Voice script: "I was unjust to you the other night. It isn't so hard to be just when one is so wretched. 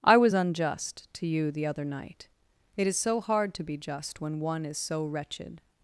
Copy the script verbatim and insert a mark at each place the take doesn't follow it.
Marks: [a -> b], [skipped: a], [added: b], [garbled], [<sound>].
"I was unjust to you the other night. It [isn't -> is] so hard to be just when one is so wretched.